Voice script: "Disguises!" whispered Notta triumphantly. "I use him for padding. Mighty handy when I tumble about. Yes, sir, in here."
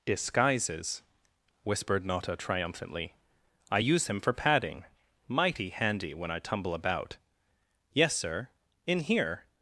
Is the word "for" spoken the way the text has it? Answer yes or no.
yes